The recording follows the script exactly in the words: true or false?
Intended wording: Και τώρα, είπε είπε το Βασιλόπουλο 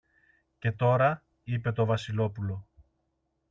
false